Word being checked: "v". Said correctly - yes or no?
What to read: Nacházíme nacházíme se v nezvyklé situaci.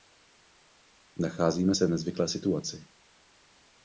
yes